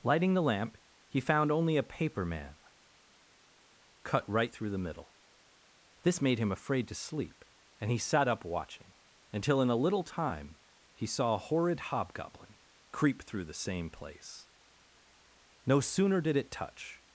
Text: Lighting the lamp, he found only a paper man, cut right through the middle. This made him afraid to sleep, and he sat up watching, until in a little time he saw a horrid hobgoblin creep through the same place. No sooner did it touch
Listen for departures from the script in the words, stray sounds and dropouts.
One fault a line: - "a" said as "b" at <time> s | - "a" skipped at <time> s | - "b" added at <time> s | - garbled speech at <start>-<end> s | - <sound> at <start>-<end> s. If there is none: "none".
none